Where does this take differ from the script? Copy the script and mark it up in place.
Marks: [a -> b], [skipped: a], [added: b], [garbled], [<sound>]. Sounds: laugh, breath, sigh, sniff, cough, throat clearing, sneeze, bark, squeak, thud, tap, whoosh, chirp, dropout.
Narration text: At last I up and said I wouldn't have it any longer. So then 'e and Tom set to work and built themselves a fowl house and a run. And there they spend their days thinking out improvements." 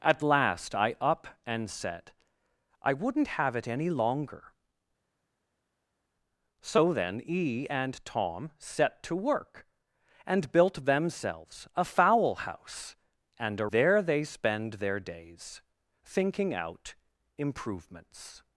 At last I up and said I wouldn't have it any longer. So then 'e and Tom set to work and built themselves a fowl house and a [skipped: run. And] there they spend their days thinking out improvements."